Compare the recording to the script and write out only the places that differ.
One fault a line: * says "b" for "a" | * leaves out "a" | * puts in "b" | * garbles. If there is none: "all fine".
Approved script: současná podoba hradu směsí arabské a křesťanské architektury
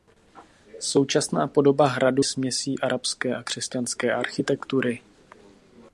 all fine